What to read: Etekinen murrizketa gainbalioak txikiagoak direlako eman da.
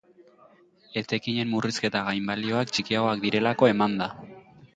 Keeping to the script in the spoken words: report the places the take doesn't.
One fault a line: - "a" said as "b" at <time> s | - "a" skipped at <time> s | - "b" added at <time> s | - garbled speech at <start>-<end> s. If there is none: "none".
none